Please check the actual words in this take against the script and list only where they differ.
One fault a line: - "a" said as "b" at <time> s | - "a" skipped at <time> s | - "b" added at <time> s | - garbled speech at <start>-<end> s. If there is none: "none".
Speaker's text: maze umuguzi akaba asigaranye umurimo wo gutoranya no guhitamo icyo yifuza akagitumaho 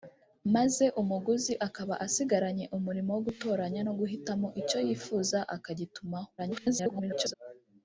- garbled speech at 6.4-7.3 s